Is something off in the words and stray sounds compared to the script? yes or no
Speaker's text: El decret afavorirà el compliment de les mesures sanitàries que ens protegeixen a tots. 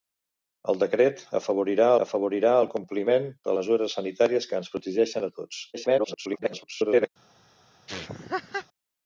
yes